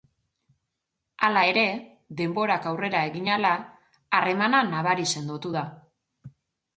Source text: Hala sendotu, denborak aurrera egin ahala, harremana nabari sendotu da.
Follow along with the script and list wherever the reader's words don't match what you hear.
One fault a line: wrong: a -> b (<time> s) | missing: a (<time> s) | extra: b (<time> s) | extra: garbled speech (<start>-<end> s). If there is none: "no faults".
wrong: sendotu -> ere (1.5 s)